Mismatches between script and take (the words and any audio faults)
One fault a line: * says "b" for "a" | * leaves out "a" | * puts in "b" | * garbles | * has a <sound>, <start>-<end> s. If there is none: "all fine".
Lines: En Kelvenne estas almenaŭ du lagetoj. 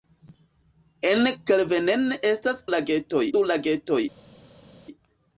* says "lagetoj" for "almenaŭ"